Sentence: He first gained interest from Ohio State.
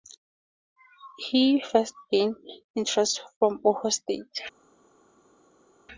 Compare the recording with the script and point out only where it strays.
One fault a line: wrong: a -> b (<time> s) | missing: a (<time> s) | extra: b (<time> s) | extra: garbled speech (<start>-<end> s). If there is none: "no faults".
no faults